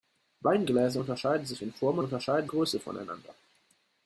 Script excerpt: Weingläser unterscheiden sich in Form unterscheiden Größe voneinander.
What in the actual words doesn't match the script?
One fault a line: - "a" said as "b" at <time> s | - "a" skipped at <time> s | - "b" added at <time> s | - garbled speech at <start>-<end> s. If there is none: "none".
none